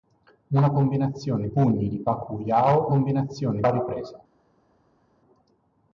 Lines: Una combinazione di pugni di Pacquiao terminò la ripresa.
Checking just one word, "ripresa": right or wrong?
right